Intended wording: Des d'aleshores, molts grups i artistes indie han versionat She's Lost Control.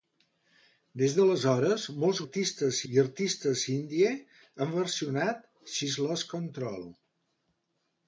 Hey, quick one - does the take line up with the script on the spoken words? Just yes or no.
no